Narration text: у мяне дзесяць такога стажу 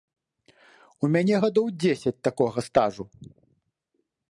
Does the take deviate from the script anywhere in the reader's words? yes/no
yes